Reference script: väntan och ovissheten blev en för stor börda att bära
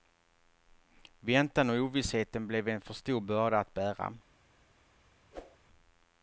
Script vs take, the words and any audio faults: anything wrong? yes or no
yes